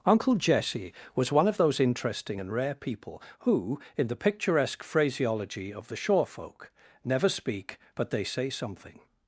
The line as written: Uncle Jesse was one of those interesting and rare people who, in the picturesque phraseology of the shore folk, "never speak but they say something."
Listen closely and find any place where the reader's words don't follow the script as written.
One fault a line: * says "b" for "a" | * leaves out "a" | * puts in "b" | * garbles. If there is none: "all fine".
all fine